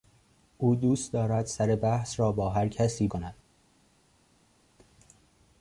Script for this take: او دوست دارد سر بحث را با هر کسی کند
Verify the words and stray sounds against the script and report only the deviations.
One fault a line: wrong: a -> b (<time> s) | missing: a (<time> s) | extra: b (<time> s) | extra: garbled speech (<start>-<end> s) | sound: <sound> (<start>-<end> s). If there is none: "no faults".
no faults